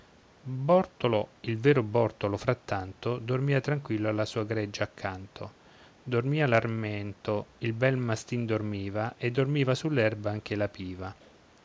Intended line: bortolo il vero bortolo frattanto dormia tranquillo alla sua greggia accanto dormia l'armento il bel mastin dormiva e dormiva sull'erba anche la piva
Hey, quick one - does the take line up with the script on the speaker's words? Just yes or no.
yes